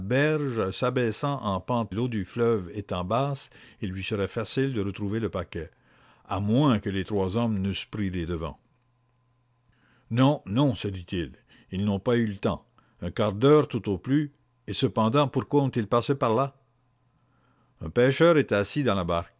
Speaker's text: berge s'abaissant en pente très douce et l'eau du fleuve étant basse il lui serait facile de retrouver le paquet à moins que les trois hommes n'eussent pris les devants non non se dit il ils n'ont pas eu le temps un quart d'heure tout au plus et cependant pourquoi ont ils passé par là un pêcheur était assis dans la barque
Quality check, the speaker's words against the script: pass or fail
fail